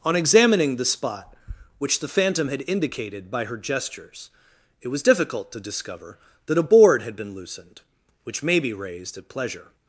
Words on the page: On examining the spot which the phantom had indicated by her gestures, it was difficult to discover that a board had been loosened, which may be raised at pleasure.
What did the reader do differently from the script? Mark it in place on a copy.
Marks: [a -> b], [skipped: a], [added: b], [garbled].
On examining the spot which the phantom had indicated by her gestures, it was difficult to discover that a board had been loosened, which may be raised at pleasure.